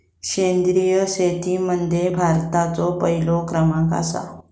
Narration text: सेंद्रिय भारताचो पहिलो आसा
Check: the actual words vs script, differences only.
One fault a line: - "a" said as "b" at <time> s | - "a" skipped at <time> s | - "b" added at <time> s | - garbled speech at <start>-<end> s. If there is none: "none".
- "शेतीमध्ये" added at 1.1 s
- "क्रमांक" added at 3.5 s